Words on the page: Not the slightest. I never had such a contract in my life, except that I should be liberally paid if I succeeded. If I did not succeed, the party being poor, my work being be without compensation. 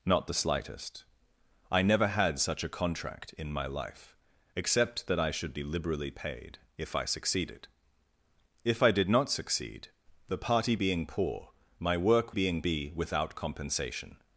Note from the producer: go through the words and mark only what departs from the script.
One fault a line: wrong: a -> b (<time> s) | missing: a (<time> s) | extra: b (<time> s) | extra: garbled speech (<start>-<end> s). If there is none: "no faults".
no faults